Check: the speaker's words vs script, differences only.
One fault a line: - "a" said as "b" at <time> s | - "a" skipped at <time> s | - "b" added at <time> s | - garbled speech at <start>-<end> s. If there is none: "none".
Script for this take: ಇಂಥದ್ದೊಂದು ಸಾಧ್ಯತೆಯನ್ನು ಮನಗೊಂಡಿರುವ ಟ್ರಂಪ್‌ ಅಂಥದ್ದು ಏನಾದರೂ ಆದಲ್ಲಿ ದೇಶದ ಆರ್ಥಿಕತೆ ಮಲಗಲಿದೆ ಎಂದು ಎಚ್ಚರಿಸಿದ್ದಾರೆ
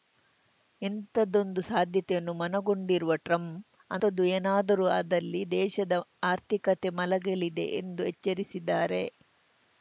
none